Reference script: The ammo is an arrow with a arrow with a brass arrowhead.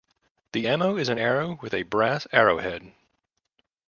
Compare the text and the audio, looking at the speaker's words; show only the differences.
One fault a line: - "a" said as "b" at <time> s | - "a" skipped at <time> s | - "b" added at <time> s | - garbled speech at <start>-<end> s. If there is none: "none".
- "arrow with a" skipped at 1.8 s